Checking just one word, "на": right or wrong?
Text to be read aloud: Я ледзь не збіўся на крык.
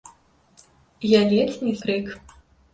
wrong